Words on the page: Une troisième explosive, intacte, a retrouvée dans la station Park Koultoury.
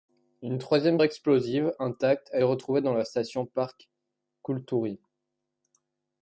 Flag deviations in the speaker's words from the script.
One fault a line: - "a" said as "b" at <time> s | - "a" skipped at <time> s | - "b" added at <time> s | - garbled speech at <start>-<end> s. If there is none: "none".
none